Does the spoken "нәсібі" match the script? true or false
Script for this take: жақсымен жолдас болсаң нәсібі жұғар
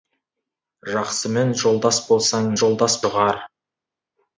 false